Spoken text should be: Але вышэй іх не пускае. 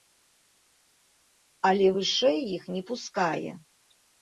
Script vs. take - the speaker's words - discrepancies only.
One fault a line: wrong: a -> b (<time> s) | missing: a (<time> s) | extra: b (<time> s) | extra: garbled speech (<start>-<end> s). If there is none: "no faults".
no faults